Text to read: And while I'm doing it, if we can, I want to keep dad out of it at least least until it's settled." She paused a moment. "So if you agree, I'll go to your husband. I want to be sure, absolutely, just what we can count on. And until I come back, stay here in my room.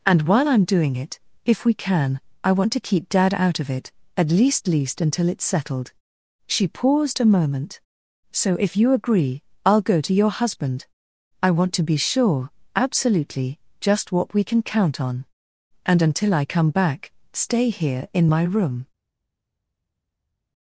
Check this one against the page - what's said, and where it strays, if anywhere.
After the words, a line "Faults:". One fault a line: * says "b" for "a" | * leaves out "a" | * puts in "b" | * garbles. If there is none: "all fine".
And while I'm doing it, if we can, I want to keep dad out of it at least least until it's settled." She paused a moment. "So if you agree, I'll go to your husband. I want to be sure, absolutely, just what we can count on. And until I come back, stay here in my room.
Faults:
all fine